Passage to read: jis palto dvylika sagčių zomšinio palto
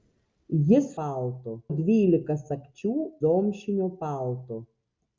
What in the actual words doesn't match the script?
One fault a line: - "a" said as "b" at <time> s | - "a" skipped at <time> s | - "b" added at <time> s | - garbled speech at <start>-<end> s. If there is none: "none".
none